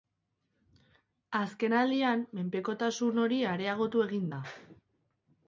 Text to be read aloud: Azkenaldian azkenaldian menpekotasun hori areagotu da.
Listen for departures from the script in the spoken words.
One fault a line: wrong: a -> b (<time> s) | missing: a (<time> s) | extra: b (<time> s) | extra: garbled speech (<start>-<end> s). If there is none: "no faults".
missing: azkenaldian (2.2 s)
extra: egin (4.1 s)